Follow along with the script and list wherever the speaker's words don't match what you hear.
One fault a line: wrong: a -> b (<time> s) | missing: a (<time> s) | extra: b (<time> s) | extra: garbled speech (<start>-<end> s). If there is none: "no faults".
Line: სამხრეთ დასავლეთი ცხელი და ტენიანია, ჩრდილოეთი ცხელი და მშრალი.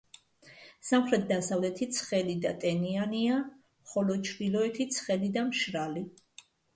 extra: ხოლო (3.9 s)